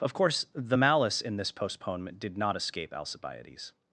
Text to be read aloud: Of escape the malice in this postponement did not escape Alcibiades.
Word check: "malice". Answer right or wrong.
right